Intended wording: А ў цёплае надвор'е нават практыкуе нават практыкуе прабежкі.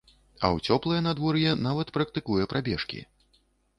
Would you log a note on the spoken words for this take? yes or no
yes